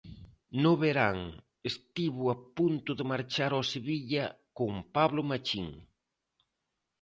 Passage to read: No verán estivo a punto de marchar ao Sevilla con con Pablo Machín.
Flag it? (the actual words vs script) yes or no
yes